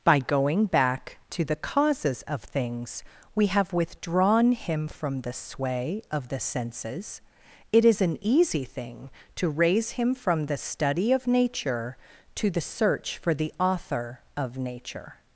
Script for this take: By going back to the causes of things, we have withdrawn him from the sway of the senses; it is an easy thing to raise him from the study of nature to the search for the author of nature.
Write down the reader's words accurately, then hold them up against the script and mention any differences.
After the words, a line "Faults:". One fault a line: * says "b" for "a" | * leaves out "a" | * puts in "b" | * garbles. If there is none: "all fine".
By going back to the causes of things, we have withdrawn him from the sway of the senses; it is an easy thing to raise him from the study of nature to the search for the author of nature.
Faults:
all fine